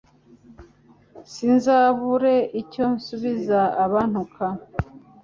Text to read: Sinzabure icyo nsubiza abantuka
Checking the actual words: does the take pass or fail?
pass